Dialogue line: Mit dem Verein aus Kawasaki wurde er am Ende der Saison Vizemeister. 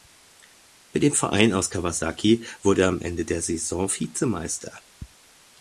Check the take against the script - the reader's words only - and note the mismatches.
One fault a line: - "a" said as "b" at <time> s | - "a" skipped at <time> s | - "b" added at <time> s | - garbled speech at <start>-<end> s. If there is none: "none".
none